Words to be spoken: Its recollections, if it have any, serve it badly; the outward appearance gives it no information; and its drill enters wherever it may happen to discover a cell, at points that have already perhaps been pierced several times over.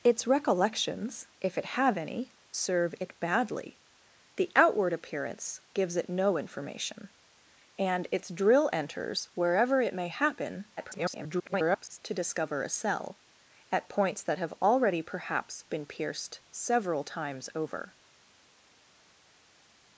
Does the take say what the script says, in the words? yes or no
no